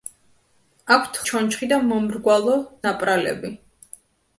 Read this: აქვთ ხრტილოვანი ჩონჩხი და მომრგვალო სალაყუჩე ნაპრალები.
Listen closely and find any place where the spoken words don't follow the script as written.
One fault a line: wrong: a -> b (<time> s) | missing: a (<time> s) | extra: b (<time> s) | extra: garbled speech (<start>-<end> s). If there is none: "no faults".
missing: ხრტილოვანი (1.2 s)
missing: სალაყუჩე (2.6 s)